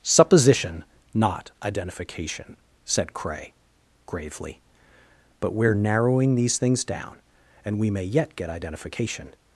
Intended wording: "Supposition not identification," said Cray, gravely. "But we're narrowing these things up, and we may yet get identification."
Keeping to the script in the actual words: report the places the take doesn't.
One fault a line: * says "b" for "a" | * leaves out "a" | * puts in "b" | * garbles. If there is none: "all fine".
* says "down" for "up"